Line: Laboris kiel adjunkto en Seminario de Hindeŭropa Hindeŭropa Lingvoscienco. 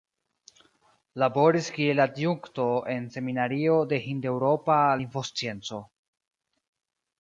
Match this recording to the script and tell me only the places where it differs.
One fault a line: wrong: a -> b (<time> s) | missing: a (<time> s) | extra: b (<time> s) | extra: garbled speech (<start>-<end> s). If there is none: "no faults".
missing: Hindeŭropa (4.8 s)